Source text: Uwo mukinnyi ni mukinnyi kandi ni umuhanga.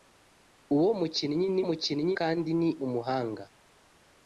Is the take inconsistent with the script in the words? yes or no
no